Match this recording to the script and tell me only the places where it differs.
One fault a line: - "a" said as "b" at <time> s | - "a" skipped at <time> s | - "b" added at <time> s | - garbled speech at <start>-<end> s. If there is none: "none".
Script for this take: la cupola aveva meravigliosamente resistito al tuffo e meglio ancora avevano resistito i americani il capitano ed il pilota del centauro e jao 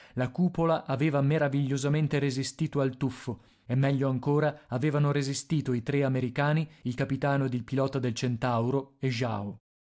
- "tre" added at 5.8 s